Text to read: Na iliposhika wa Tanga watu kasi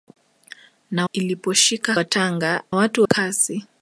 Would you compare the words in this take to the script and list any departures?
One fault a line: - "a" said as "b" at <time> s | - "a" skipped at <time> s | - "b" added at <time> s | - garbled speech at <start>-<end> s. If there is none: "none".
none